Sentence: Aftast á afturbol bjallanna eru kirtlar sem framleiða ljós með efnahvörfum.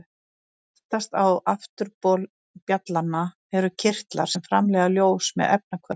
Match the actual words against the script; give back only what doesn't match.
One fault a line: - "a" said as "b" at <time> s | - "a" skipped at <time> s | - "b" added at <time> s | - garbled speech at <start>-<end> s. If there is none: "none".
none